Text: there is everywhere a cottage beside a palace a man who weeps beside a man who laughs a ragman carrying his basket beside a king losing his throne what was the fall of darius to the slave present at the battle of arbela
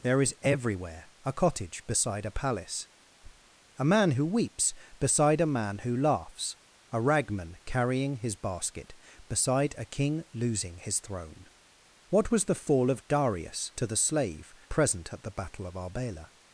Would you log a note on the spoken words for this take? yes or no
no